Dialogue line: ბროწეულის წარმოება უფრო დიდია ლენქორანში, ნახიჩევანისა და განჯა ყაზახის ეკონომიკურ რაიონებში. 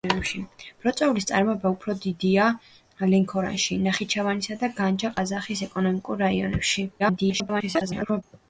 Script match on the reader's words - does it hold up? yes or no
no